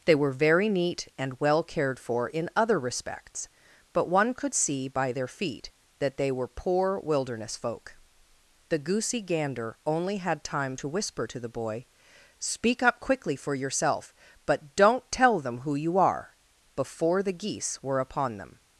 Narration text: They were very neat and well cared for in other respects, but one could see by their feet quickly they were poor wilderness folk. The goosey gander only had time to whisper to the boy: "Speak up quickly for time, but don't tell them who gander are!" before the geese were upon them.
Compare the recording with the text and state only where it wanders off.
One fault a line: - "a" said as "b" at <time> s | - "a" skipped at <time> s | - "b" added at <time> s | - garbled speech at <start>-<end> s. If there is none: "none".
- "quickly" said as "that" at 6.0 s
- "time" said as "yourself" at 13.5 s
- "gander" said as "you" at 15.8 s